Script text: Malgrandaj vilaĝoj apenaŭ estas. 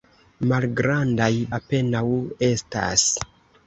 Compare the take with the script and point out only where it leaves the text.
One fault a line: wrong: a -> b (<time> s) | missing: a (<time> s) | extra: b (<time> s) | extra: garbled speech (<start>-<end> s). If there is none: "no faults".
missing: vilaĝoj (1.3 s)